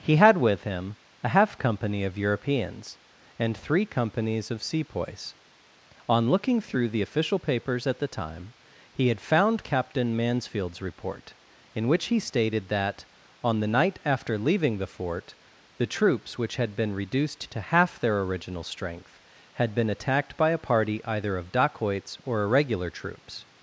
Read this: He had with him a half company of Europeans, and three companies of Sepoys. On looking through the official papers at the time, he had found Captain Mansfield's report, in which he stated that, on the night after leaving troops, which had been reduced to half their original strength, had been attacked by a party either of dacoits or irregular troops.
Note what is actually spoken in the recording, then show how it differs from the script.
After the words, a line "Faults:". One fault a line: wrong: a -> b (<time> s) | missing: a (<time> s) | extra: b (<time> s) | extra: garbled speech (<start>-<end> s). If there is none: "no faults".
He had with him a half company of Europeans, and three companies of Sepoys. On looking through the official papers at the time, he had found Captain Mansfield's report, in which he stated that, on the night after leaving the fort, the troops, which had been reduced to half their original strength, had been attacked by a party either of dacoits or irregular troops.
Faults:
extra: the fort the (14.8 s)